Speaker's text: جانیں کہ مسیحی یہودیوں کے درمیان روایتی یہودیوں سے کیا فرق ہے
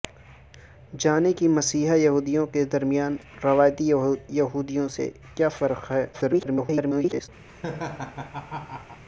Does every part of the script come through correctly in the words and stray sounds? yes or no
no